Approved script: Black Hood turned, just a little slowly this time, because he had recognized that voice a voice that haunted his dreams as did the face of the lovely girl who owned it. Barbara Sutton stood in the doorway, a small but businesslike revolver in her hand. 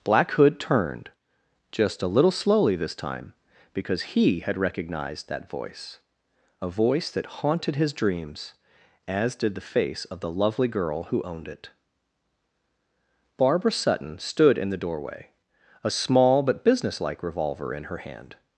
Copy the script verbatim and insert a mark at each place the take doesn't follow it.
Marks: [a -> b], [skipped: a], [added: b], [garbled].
Black Hood turned, just a little slowly this time, because he had recognized that voice a voice that haunted his dreams as did the face of the lovely girl who owned it. Barbara Sutton stood in the doorway, a small but businesslike revolver in her hand.